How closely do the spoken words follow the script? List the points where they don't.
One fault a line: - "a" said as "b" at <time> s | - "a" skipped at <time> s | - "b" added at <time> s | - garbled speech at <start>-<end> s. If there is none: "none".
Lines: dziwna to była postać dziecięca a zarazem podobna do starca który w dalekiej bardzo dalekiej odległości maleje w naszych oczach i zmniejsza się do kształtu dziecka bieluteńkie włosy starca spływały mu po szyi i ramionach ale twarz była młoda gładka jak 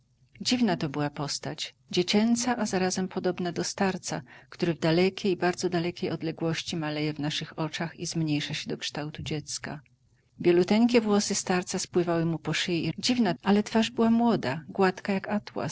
- "ramionach" said as "dziwna" at 13.0 s